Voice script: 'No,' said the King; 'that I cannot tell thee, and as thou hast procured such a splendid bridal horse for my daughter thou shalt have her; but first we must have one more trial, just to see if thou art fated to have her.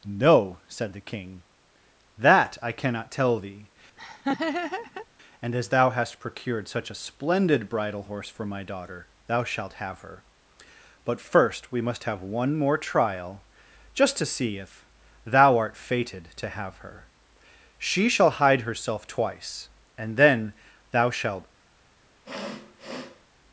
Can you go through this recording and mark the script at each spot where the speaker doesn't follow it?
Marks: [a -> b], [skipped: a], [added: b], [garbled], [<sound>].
'No,' said the King; 'that I cannot tell thee, [laugh] and as thou hast procured such a splendid bridal horse for my daughter thou shalt have her; but first we must have one more trial, just to see if thou art fated to have her. [added: She shall hide herself twice and then thou shalt] [sniff]